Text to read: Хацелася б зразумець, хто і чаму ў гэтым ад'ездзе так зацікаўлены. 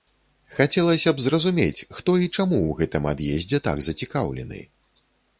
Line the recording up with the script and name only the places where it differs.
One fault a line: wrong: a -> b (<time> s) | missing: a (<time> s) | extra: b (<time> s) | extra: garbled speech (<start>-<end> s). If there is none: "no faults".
no faults